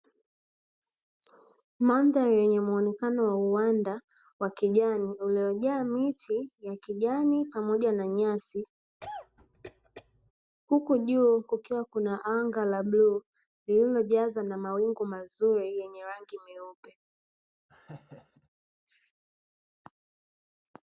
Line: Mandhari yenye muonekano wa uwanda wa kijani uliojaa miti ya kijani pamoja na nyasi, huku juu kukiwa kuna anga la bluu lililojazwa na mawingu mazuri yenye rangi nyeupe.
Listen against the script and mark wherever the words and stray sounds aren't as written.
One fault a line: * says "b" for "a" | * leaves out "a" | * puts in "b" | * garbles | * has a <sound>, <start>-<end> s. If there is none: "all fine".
* has a cough, 9.0-10.3 s
* has a laugh, 17.7-18.5 s